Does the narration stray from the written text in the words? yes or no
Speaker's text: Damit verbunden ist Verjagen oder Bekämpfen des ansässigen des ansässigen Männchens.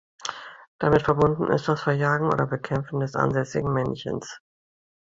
yes